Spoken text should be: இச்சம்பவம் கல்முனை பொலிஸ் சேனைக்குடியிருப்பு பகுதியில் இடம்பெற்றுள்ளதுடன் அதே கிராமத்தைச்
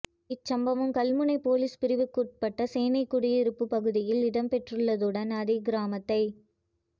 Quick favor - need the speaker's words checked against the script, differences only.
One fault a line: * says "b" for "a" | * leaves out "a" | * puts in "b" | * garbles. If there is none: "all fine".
* puts in "பிரிவுக்குட்பட்ட"